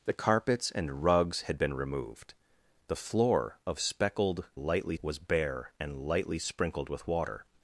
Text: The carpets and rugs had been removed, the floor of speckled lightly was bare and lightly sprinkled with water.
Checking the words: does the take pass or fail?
pass